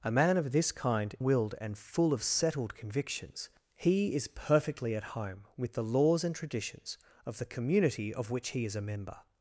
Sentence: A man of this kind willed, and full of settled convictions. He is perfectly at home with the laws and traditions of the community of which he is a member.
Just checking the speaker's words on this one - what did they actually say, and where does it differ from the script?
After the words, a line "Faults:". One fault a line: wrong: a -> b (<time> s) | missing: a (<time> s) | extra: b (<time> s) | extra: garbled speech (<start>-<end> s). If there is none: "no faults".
A man of this kind willed, and full of settled convictions. He is perfectly at home with the laws and traditions of the community of which he is a member.
Faults:
no faults